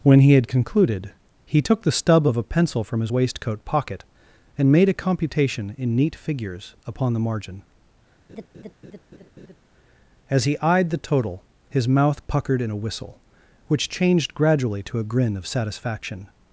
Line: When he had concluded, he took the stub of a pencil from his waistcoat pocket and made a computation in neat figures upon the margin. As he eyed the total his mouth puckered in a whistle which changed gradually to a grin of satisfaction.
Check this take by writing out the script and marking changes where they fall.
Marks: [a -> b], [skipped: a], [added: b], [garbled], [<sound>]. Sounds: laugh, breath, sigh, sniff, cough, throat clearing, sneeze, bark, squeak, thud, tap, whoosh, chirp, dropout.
When he had concluded, he took the stub of a pencil from his waistcoat pocket and made a computation in neat figures upon the margin. [laugh] As he eyed the total his mouth puckered in a whistle which changed gradually to a grin of satisfaction.